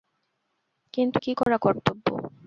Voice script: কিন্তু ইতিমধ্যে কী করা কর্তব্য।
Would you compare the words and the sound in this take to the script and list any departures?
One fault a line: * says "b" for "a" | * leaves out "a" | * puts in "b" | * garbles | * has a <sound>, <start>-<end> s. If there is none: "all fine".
* leaves out "ইতিমধ্যে"
* has a dropout, 1.4-1.5 s